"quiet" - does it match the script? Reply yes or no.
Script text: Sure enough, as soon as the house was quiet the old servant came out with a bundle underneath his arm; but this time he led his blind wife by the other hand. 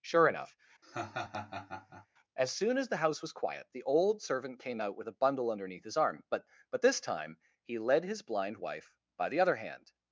yes